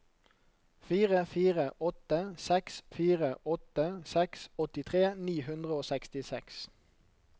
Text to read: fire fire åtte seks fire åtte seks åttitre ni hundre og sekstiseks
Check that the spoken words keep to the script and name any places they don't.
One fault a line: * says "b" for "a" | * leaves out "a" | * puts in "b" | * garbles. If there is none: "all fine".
all fine